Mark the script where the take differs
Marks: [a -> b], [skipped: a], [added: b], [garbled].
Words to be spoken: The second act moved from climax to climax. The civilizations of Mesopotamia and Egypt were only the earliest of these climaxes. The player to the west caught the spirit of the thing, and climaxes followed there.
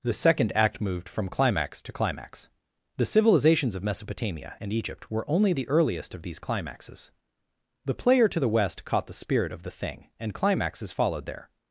The second act moved from climax to climax. The civilizations of Mesopotamia and Egypt were only the earliest of these climaxes. The player to the west caught the spirit of the thing, and climaxes followed there.